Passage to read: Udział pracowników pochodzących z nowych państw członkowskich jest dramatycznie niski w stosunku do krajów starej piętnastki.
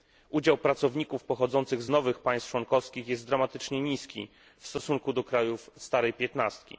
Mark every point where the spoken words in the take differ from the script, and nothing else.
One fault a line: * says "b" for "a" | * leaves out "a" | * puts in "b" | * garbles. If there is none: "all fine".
all fine